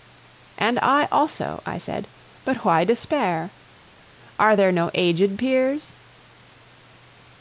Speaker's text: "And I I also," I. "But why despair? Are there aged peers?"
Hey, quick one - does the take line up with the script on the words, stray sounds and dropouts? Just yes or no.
no